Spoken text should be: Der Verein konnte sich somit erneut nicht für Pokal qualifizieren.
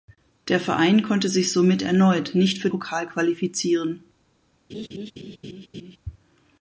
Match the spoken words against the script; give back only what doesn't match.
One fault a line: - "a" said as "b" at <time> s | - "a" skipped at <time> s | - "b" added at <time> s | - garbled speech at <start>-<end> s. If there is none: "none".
none